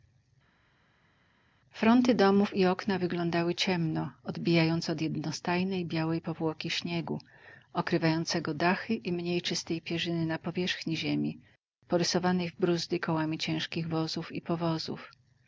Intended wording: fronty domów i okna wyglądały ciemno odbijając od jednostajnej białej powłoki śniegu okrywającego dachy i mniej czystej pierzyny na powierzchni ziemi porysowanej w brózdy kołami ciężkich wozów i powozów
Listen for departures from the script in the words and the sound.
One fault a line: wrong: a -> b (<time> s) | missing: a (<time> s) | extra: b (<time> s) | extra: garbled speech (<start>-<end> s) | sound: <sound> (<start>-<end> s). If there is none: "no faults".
no faults